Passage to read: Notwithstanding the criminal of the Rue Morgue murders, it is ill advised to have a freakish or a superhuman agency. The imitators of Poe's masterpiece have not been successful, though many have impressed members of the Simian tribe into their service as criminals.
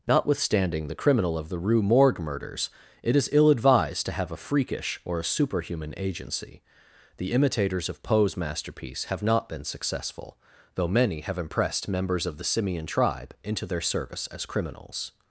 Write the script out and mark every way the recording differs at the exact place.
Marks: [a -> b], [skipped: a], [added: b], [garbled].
Notwithstanding the criminal of the Rue Morgue murders, it is ill advised to have a freakish or a superhuman agency. The imitators of Poe's masterpiece have not been successful, though many have impressed members of the Simian tribe into their service as criminals.